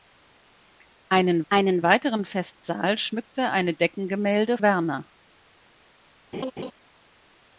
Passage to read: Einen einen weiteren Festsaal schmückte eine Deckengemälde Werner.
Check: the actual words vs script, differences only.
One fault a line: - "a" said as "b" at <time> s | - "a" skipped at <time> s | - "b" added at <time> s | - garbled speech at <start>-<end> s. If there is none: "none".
none